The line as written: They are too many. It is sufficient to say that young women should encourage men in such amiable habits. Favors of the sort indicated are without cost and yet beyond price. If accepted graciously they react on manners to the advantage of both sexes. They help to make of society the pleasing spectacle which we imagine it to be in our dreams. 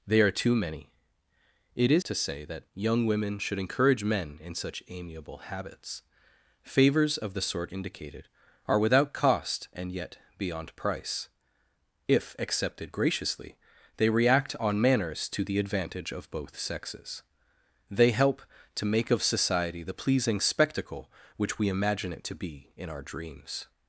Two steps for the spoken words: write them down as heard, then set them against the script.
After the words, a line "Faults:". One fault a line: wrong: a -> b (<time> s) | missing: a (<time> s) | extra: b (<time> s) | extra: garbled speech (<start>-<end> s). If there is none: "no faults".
They are too many. It is to say that young women should encourage men in such amiable habits. Favors of the sort indicated are without cost and yet beyond price. If accepted graciously they react on manners to the advantage of both sexes. They help to make of society the pleasing spectacle which we imagine it to be in our dreams.
Faults:
missing: sufficient (2.0 s)